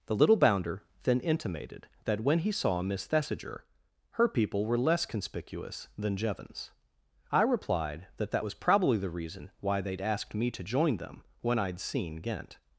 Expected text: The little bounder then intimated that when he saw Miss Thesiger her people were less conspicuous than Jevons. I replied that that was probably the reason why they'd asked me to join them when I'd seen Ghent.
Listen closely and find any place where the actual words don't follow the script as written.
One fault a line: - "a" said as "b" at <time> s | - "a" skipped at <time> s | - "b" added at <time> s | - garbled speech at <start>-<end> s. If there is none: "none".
none